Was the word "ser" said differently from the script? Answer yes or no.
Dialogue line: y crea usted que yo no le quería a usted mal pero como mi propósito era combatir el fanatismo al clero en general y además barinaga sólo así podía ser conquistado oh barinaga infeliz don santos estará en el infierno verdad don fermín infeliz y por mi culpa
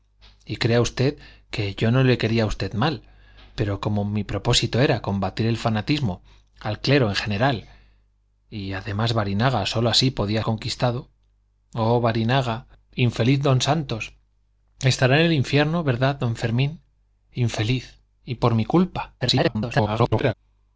yes